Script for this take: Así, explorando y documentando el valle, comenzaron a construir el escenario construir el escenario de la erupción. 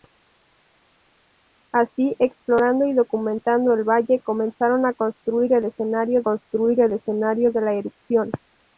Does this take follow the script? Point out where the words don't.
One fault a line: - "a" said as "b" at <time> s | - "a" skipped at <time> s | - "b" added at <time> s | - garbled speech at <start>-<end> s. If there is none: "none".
none